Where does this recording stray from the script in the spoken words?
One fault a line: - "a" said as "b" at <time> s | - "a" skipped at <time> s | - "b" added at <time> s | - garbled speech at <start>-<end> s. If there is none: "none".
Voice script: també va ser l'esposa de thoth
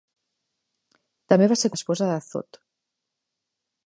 none